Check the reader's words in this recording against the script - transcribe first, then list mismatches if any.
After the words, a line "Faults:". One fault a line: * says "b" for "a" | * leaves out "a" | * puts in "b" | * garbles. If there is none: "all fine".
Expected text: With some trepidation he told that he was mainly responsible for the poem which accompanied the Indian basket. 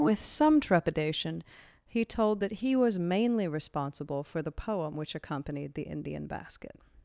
With some trepidation he told that he was mainly responsible for the poem which accompanied the Indian basket.
Faults:
all fine